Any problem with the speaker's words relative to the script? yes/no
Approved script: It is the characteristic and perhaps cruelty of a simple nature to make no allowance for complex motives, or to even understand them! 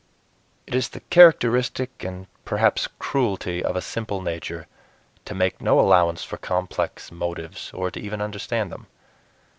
no